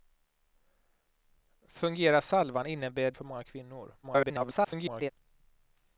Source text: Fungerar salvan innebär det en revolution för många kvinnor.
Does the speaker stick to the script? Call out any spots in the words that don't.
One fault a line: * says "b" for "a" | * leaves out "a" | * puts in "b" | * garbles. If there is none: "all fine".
* leaves out "det en revolution"
* garbles